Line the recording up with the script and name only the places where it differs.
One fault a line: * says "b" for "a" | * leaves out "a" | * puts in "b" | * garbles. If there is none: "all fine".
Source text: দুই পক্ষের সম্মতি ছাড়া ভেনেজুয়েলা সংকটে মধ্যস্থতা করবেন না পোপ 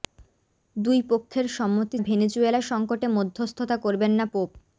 * leaves out "ছাড়া"